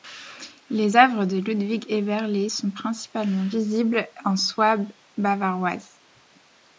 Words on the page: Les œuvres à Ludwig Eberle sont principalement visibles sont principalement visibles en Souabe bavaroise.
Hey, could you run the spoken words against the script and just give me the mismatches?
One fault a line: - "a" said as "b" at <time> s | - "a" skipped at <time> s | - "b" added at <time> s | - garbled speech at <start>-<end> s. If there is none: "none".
- "à" said as "de" at 1.2 s
- "sont principalement visibles" skipped at 4.1 s